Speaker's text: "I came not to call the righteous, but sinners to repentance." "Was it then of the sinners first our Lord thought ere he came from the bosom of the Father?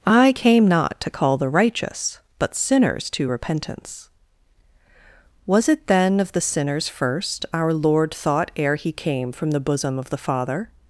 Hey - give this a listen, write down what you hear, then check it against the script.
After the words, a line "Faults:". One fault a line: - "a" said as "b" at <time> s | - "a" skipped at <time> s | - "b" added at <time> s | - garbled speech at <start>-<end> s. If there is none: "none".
"I came not to call the righteous, but sinners to repentance." "Was it then of the sinners first our Lord thought ere he came from the bosom of the Father?
Faults:
none